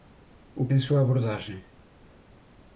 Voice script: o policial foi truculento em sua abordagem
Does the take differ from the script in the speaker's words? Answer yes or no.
yes